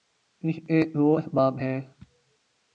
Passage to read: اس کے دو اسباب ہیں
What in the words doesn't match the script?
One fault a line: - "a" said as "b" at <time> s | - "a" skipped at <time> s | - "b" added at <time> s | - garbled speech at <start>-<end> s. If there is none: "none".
none